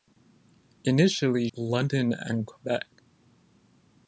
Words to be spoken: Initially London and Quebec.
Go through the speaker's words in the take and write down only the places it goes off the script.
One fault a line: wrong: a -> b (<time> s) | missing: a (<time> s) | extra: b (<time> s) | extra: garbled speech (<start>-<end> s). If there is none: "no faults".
no faults